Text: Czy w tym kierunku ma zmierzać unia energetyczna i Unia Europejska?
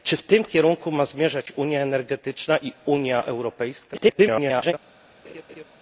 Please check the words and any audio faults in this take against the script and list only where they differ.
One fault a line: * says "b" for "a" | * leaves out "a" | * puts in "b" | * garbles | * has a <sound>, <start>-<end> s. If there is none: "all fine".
* garbles
* has a laugh, 5.2-5.6 s